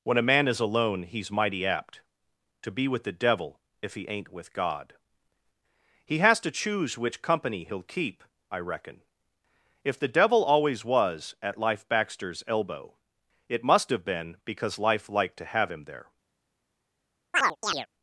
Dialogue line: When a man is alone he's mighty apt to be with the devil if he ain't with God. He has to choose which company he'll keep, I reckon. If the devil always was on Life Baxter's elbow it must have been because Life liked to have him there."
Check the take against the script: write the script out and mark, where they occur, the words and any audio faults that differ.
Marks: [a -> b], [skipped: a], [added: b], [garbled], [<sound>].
When a man is alone he's mighty apt to be with the devil if he ain't with God. He has to choose which company he'll keep, I reckon. If the devil always was [on -> at] Life Baxter's elbow it must have been because Life liked to have him there." [chirp]